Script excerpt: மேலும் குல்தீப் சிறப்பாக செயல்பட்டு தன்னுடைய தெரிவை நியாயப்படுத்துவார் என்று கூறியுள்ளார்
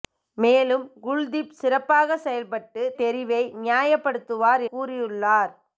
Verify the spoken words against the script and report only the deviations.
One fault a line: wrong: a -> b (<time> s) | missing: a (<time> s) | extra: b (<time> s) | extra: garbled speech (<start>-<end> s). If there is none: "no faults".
missing: தன்னுடைய (2.8 s)
missing: என்று (4.6 s)